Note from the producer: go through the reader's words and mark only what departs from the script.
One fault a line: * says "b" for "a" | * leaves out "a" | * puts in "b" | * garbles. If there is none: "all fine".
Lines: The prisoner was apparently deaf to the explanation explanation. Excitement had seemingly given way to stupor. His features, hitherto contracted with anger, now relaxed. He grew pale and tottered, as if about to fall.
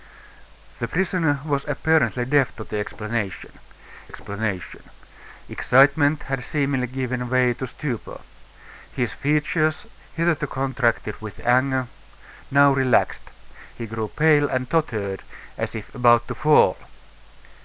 all fine